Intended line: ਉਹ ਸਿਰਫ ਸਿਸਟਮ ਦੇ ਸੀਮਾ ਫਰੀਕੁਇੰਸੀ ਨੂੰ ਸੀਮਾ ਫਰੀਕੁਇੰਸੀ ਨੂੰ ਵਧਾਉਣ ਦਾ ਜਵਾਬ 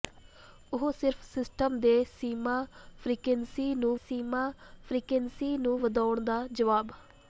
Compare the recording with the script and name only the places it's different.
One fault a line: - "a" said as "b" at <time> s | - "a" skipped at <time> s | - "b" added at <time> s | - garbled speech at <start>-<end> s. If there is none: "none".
none